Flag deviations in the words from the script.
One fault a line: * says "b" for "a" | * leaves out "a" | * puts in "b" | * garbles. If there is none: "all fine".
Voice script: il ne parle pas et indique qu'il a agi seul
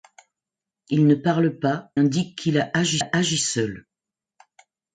* leaves out "et"
* puts in "a agi"